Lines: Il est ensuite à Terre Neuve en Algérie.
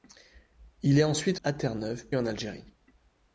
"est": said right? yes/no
yes